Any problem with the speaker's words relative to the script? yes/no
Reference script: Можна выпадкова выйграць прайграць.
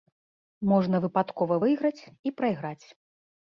yes